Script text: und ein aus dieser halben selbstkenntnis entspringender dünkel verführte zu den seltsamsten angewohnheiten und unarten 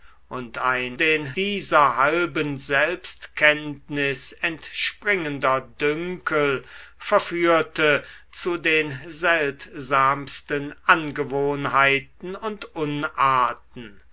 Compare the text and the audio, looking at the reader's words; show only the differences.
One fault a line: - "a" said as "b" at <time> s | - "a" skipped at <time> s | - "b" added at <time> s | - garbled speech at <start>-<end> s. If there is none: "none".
- "aus" said as "den" at 0.9 s